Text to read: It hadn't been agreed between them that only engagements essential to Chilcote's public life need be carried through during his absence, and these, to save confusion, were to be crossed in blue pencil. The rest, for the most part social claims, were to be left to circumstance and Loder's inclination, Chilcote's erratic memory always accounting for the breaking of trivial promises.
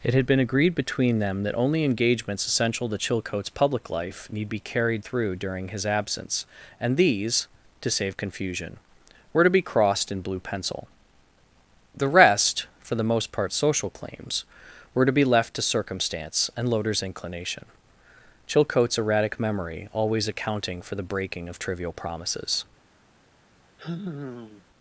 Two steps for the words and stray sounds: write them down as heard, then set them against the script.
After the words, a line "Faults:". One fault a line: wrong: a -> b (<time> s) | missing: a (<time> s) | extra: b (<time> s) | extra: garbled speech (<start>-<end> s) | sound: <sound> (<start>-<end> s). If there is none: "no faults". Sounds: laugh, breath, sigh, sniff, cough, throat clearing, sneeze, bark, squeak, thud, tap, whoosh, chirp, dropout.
It had been agreed between them that only engagements essential to Chilcote's public life need be carried through during his absence, and these, to save confusion, were to be crossed in blue pencil. The rest, for the most part social claims, were to be left to circumstance and Loder's inclination, Chilcote's erratic memory always accounting for the breaking of trivial promises.
Faults:
wrong: hadn't -> had (0.1 s)
sound: sigh (23.8-24.6 s)